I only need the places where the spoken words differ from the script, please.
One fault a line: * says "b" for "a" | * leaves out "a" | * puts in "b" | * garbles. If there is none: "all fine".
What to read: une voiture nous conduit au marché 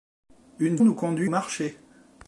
* leaves out "voiture"
* leaves out "au"